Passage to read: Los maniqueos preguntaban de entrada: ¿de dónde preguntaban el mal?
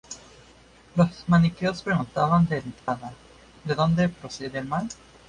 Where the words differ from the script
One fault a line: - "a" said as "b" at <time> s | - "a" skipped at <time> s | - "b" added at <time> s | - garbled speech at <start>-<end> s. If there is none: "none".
- "preguntaban" said as "procede" at 4.1 s